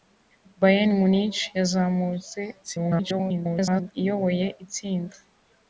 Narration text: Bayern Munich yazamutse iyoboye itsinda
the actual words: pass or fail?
fail